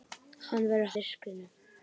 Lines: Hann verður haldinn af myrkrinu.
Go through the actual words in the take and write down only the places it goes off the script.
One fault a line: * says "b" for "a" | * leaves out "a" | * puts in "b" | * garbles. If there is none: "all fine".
* leaves out "haldinn af"